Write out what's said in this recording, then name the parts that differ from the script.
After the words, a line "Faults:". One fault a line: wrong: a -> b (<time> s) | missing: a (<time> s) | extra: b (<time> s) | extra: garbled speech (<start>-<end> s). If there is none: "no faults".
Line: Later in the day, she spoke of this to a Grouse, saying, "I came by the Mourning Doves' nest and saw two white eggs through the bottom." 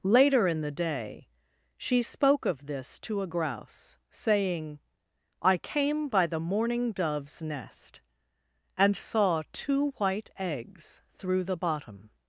Later in the day, she spoke of this to a Grouse, saying, "I came by the Mourning Doves' nest and saw two white eggs through the bottom."
Faults:
no faults